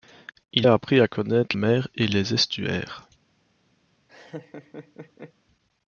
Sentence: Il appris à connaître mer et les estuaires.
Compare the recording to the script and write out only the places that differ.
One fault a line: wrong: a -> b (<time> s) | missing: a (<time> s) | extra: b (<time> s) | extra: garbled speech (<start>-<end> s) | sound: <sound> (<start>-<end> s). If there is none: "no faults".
sound: laugh (4.1-5.3 s)